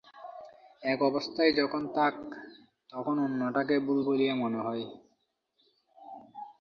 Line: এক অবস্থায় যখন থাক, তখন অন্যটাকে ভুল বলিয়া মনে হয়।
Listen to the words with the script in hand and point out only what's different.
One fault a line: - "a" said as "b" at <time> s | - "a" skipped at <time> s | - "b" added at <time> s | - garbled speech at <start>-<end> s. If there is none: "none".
none